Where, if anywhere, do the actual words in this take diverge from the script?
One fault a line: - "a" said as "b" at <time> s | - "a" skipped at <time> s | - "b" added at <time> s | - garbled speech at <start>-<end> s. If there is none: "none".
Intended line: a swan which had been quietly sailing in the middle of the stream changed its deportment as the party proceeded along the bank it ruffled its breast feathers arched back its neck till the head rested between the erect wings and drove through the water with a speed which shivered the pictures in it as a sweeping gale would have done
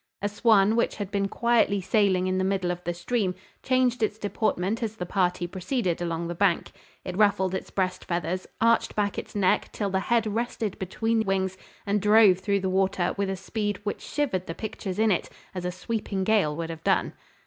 - "the erect" skipped at 11.2 s